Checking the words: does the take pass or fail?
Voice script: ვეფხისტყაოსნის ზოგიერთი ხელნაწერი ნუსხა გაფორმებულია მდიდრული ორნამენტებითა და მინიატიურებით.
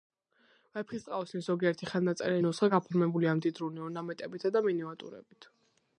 pass